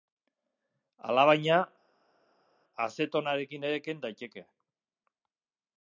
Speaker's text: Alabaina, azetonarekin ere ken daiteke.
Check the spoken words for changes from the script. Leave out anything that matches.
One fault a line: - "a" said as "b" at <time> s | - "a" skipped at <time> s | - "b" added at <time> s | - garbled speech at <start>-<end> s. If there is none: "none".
none